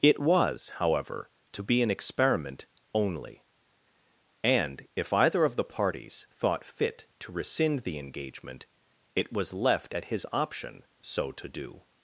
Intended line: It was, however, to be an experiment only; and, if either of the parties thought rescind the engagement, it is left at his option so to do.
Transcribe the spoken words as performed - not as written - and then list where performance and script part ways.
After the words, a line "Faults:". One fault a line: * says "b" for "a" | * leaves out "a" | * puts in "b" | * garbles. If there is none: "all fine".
It was, however, to be an experiment only; and, if either of the parties thought fit to rescind the engagement, it was left at his option so to do.
Faults:
* puts in "fit to"
* says "was" for "is"